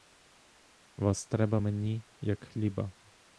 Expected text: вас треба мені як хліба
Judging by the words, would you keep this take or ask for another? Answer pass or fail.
pass